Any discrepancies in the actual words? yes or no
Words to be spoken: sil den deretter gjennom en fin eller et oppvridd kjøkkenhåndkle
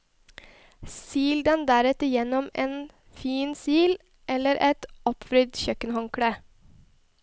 yes